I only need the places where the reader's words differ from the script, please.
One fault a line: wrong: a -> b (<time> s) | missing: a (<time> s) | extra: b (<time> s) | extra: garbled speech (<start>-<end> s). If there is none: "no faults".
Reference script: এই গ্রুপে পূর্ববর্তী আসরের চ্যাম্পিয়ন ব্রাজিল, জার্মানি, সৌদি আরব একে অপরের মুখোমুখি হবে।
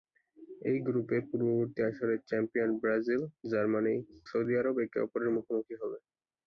no faults